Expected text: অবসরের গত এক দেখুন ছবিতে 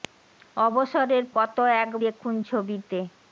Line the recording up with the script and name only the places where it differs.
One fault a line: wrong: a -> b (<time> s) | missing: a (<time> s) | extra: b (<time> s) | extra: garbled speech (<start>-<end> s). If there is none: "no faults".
no faults